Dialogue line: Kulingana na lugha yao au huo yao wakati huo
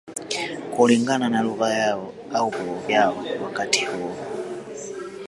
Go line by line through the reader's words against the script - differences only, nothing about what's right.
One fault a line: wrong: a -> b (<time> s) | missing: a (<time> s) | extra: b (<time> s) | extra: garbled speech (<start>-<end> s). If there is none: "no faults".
no faults